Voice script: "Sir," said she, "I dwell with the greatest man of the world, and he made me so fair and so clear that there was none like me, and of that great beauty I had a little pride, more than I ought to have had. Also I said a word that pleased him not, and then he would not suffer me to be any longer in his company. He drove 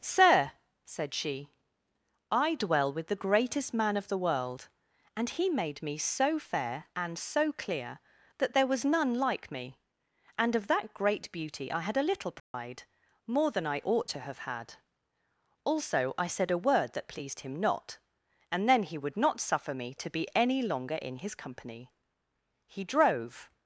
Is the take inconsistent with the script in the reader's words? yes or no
no